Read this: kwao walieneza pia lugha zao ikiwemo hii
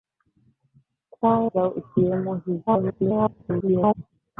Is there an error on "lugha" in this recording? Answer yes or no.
yes